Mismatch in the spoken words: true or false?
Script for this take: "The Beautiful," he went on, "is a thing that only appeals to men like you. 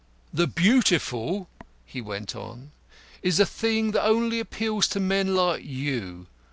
false